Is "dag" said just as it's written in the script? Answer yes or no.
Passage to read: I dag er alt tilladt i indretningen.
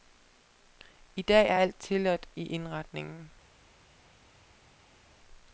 yes